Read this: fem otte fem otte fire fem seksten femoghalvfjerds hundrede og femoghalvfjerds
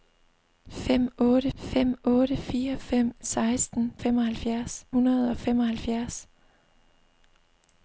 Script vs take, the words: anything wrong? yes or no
no